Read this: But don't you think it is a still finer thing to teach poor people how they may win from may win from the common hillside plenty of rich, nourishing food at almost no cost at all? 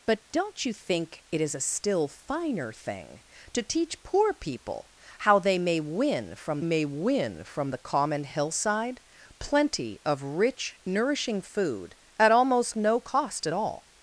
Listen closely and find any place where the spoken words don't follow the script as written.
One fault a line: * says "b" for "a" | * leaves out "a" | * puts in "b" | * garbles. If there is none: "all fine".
all fine